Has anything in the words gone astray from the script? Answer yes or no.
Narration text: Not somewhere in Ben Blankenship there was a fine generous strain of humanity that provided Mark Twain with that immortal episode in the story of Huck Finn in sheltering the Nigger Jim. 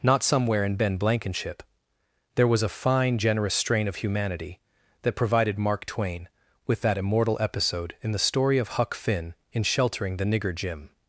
no